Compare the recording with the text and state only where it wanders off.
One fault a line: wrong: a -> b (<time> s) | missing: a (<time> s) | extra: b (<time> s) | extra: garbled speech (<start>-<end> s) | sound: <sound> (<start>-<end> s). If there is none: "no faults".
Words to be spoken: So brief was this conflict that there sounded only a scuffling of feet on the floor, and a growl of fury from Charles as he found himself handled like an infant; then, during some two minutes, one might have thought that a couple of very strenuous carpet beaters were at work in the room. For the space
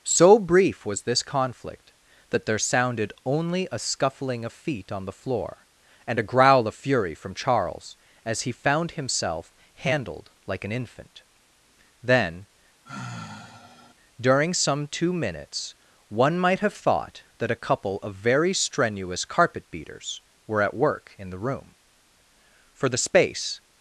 sound: sigh (12.9-13.9 s)